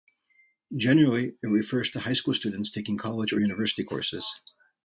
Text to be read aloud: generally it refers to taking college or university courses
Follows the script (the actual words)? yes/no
no